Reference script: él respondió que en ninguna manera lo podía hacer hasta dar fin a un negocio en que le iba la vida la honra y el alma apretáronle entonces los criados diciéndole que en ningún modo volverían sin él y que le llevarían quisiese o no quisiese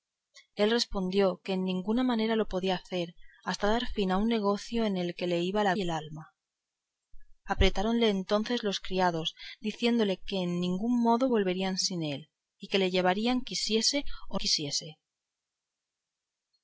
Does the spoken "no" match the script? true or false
false